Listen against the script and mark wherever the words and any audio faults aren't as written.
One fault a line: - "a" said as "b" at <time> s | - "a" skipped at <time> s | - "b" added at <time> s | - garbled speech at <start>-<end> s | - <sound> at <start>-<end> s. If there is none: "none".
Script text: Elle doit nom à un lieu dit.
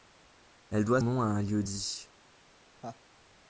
- laugh at 2.8-3.0 s